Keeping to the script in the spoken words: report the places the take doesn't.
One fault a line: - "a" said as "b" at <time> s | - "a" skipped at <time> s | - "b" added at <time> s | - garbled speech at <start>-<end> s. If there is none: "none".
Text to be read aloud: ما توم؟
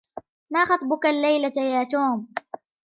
- "خطبك الليلة يا" added at 0.6 s